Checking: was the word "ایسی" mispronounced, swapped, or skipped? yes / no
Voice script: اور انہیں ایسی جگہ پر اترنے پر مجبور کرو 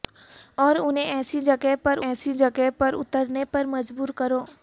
no